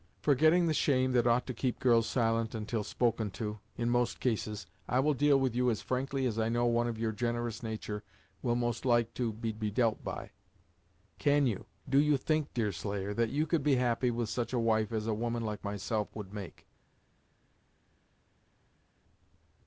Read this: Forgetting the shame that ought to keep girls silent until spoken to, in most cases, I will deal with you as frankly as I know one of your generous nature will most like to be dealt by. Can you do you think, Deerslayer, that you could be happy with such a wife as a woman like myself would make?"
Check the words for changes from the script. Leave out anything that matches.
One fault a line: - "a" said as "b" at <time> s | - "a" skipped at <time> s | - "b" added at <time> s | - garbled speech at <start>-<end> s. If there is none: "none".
- "be" added at 9.5 s